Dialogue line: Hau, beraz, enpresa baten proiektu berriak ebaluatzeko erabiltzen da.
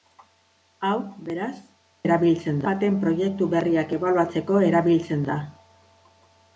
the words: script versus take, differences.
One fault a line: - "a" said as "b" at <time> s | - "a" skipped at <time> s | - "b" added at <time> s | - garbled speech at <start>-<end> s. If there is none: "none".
- "enpresa" said as "erabiltzen" at 2.1 s